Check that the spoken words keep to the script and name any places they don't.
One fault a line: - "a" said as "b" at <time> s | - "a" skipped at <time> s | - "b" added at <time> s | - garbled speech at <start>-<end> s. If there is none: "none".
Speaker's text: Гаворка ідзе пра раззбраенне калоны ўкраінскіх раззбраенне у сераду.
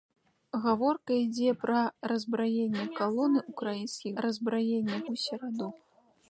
none